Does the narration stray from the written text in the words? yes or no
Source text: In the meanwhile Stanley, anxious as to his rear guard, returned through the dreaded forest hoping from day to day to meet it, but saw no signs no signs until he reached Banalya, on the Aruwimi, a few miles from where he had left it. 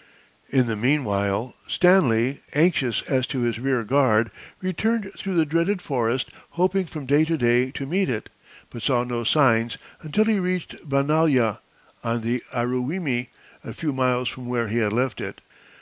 yes